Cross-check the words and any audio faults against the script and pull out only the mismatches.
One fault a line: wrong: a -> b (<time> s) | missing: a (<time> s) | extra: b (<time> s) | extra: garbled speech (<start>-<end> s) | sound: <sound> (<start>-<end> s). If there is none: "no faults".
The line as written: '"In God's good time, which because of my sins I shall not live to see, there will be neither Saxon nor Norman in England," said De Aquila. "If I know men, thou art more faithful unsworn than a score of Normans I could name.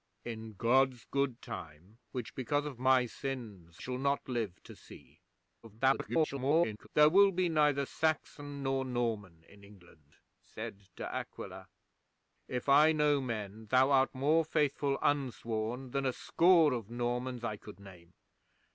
missing: I (3.8 s)
extra: garbled speech (5.6-6.9 s)